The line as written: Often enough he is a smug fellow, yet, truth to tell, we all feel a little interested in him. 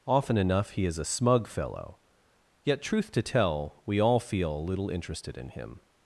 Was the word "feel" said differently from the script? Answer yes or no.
no